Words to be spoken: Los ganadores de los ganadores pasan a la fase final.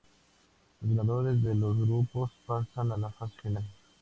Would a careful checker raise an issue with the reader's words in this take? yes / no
yes